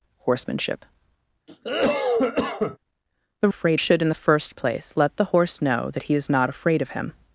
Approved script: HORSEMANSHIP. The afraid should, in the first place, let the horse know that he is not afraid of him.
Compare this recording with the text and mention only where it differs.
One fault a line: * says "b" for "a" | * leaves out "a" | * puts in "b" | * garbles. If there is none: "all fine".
all fine